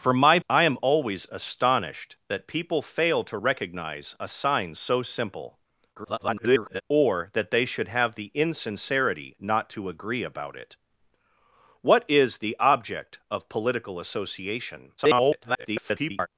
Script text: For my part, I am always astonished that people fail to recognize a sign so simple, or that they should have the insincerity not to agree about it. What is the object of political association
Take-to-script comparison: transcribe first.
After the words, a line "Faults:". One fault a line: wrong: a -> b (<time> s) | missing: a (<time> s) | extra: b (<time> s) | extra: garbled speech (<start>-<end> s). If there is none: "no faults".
For my I am always astonished that people fail to recognize a sign so simple, [garbled] or that they should have the insincerity not to agree about it. What is the object of political association [garbled]
Faults:
missing: part (0.4 s)
extra: garbled speech (6.0-6.8 s)
extra: garbled speech (15.0-16.3 s)